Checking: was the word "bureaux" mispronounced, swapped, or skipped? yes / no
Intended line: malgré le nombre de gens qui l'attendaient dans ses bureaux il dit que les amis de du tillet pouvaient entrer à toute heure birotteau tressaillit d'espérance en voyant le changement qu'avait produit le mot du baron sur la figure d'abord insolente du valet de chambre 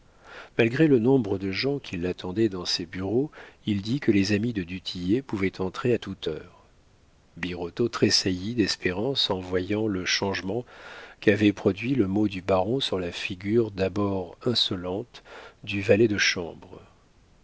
no